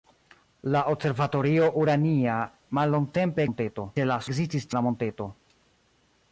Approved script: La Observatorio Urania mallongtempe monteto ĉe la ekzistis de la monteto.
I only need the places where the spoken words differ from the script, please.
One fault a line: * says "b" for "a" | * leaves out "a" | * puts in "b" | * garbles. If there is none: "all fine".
all fine